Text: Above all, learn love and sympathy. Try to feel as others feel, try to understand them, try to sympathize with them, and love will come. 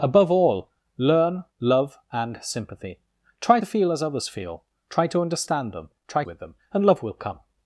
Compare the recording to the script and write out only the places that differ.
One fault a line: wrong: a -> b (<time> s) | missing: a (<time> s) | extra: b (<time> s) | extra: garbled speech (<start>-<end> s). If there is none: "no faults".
missing: to (3.6 s)
missing: to sympathize (6.2 s)